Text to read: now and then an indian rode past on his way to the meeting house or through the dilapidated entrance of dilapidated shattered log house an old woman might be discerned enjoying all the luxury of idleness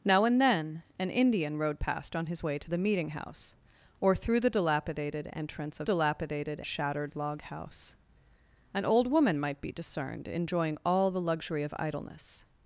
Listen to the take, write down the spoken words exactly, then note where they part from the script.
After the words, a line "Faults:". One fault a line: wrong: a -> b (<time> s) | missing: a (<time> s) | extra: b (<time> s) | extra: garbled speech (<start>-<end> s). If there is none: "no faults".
now and then an indian rode past on his way to the meeting house or through the dilapidated entrance of dilapidated shattered log house an old woman might be discerned enjoying all the luxury of idleness
Faults:
no faults